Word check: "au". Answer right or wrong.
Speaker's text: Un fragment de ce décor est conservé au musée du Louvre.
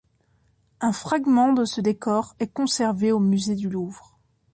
right